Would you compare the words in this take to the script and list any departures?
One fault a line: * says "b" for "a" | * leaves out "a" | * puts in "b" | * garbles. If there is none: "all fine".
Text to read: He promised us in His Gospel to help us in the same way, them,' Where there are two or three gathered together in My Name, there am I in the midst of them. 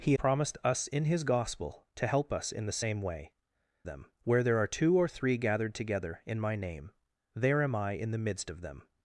all fine